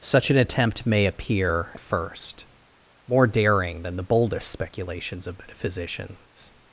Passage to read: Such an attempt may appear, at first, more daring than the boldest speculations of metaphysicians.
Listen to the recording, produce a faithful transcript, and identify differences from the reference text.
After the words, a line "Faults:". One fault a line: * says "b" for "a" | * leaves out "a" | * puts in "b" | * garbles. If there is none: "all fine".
Such an attempt may appear, first, more daring than the boldest speculations of metaphysicians.
Faults:
* leaves out "at"